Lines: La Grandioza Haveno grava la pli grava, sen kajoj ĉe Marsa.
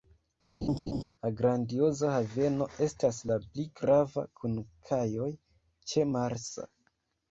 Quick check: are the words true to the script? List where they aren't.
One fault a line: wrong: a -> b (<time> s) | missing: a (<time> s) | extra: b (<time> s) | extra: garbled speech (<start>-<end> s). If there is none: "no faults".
wrong: grava -> estas (2.9 s)
wrong: sen -> kun (4.4 s)